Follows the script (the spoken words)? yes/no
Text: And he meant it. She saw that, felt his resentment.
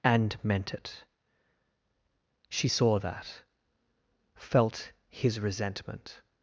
no